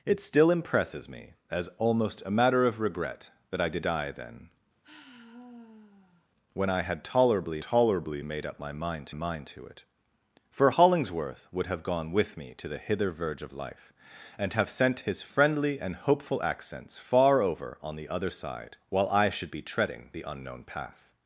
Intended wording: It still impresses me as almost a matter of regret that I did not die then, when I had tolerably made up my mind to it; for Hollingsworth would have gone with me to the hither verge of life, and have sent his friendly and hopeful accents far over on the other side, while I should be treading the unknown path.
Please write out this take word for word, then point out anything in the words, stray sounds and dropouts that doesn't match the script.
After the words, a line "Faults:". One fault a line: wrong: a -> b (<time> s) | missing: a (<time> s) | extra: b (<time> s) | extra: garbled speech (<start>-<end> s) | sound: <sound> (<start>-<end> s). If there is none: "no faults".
It still impresses me as almost a matter of regret that I did die then, when I had tolerably tolerably made up my mind mind to it; for Hollingsworth would have gone with me to the hither verge of life, and have sent his friendly and hopeful accents far over on the other side, while I should be treading the unknown path.
Faults:
missing: not (3.9 s)
sound: sigh (4.8-6.3 s)
extra: tolerably (7.6 s)
extra: mind (9.1 s)